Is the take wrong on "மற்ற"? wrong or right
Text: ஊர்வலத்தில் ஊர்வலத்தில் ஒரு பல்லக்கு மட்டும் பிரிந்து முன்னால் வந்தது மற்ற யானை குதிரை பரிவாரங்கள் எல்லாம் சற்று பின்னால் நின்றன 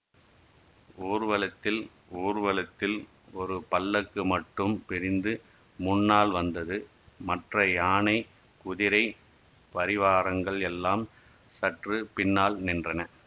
right